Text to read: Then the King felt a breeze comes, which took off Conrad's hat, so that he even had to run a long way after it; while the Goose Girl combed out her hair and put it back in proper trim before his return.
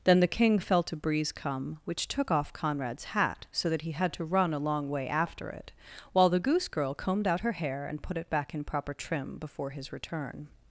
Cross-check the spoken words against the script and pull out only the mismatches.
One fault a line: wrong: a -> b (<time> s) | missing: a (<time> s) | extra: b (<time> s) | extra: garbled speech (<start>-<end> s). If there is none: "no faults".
wrong: comes -> come (1.3 s)
missing: even (3.9 s)